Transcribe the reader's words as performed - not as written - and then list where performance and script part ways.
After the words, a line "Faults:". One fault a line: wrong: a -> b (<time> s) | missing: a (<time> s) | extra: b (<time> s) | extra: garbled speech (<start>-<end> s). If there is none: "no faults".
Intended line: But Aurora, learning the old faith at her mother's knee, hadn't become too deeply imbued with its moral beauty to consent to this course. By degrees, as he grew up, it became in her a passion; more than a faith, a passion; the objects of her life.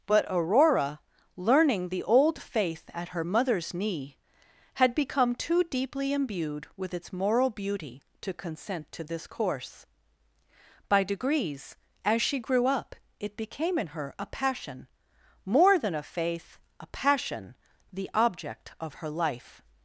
But Aurora, learning the old faith at her mother's knee, had become too deeply imbued with its moral beauty to consent to this course. By degrees, as she grew up, it became in her a passion; more than a faith, a passion; the object of her life.
Faults:
wrong: hadn't -> had (4.7 s)
wrong: he -> she (12.2 s)
wrong: objects -> object (18.1 s)